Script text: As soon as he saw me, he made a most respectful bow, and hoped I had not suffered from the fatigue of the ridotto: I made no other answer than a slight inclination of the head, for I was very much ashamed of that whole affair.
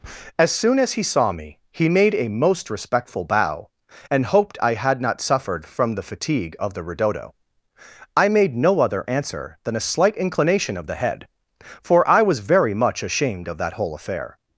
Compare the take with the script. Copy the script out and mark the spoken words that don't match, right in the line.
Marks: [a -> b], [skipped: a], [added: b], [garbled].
As soon as he saw me, he made a most respectful bow, and hoped I had not suffered from the fatigue of the ridotto: I made no other answer than a slight inclination of the head, for I was very much ashamed of that whole affair.